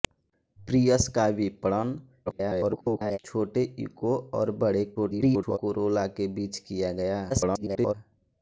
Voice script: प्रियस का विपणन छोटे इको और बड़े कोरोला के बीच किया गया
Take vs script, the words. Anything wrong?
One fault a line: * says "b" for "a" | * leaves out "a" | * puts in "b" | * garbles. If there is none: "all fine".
* garbles
* garbles
* garbles